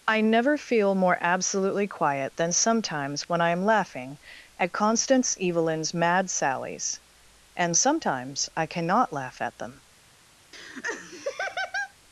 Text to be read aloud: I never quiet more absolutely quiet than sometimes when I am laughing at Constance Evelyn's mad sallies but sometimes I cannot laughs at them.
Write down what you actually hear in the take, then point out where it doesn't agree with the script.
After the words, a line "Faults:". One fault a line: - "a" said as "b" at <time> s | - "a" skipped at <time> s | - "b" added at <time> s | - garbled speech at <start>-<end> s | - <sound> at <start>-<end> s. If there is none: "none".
I never feel more absolutely quiet than sometimes when I am laughing at Constance Evelyn's mad sallies and sometimes I cannot laugh at them.
Faults:
- "quiet" said as "feel" at 0.6 s
- "but" said as "and" at 7.5 s
- "laughs" said as "laugh" at 9.1 s
- laugh at 10.5-11.9 s